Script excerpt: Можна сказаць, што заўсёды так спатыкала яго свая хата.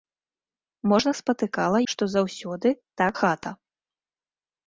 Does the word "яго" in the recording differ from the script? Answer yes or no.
yes